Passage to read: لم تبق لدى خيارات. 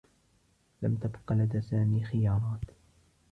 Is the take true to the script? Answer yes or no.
no